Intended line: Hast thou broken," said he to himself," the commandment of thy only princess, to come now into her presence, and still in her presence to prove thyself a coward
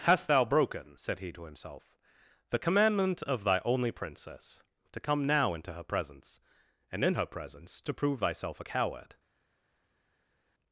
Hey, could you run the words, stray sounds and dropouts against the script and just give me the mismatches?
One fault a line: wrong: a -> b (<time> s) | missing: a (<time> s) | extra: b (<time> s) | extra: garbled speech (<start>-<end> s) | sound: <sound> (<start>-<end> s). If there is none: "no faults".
missing: still (7.0 s)